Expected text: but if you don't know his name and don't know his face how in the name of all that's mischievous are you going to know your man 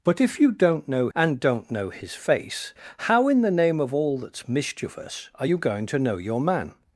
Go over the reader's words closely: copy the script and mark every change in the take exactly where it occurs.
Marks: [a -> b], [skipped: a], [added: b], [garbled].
but if you don't know [skipped: his name] and don't know his face how in the name of all that's mischievous are you going to know your man